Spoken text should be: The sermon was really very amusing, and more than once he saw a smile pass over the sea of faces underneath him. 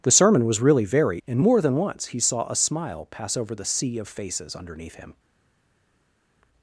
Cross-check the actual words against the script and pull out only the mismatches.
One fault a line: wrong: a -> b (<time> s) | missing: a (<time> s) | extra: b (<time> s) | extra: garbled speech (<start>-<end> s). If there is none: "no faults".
missing: amusing (1.2 s)